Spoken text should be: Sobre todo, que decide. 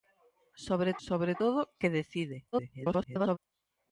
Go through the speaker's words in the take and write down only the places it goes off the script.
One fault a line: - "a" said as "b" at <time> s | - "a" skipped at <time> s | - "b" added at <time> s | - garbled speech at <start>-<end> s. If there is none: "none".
- "sobre" added at 1.1 s
- garbled speech at 2.5-3.4 s